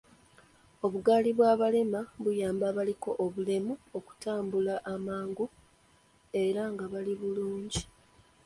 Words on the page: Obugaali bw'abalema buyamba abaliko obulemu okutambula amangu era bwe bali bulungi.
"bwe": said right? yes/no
no